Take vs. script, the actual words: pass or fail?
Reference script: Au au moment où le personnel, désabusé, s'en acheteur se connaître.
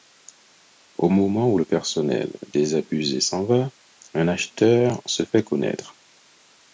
fail